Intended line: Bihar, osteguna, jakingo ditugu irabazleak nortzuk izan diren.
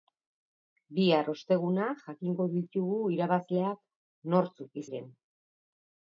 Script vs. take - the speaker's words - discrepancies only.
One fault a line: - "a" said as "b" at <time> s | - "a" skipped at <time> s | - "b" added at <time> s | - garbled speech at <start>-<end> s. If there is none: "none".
- "izan" skipped at 4.8 s